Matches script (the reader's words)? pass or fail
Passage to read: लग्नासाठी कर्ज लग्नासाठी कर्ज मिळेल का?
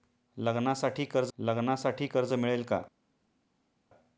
pass